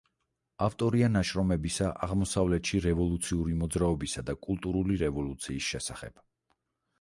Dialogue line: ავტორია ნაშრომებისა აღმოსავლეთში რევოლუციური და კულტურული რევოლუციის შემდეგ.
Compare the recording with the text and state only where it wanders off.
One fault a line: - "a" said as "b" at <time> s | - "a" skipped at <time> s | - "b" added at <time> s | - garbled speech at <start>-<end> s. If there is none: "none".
- "მოძრაობისა" added at 3.6 s
- "შემდეგ" said as "შესახებ" at 5.8 s